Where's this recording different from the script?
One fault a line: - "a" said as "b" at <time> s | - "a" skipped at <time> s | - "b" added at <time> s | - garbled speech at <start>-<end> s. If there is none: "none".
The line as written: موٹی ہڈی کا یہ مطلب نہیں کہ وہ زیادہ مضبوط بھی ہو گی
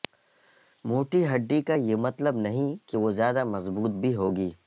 none